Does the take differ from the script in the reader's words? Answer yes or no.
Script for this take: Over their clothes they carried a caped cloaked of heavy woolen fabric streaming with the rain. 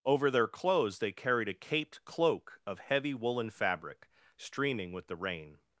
yes